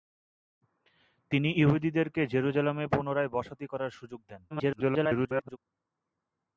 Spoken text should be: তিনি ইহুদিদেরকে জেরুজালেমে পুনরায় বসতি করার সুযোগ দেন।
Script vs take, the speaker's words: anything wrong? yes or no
yes